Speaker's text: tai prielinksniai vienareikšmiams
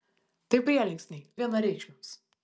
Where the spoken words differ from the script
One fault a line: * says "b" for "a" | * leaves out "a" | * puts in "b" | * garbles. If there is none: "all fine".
all fine